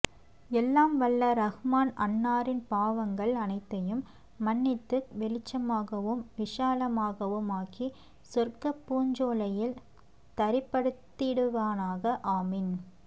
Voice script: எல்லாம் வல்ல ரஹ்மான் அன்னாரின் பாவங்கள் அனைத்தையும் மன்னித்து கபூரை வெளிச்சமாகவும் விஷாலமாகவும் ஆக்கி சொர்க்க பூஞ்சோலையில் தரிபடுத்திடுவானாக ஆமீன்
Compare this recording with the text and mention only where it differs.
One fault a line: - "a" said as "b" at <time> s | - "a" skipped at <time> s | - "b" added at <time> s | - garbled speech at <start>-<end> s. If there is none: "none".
- "கபூரை" skipped at 5.0 s